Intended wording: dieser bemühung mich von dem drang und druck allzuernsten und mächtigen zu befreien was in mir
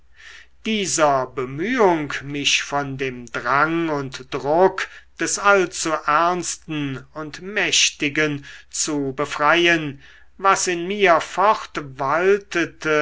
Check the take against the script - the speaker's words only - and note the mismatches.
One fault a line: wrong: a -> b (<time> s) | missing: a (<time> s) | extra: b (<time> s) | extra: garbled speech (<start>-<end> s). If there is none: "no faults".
extra: des (5.2 s)